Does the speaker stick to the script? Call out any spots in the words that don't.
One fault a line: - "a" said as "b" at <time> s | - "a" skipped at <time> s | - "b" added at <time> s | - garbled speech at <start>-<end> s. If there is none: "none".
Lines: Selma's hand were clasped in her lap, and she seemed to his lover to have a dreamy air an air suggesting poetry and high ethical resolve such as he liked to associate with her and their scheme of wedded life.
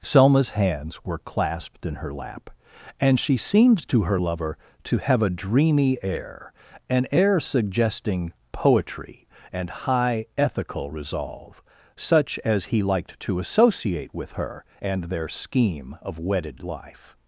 - "hand" said as "hands" at 0.5 s
- "his" said as "her" at 4.0 s